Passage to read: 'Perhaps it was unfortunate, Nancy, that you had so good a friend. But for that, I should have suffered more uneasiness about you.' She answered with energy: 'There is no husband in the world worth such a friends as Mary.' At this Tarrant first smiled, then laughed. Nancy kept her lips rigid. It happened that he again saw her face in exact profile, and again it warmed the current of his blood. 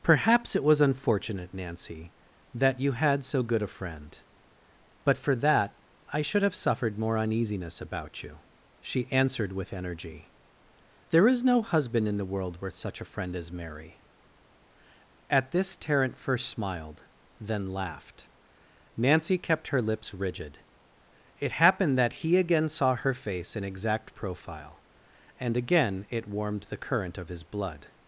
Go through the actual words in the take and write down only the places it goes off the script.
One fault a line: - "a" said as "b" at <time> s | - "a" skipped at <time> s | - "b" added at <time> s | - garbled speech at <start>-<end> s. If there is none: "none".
- "friends" said as "friend" at 13.1 s